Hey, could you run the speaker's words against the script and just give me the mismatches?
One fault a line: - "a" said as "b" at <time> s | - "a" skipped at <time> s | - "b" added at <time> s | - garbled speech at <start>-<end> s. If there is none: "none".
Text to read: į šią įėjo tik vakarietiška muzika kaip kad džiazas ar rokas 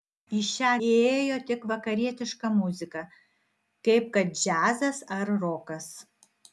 none